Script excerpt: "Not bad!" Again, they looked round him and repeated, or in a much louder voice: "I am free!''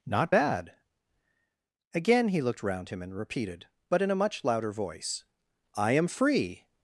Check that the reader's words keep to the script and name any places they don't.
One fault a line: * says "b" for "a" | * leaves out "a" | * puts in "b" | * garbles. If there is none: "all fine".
* says "he" for "they"
* says "but" for "or"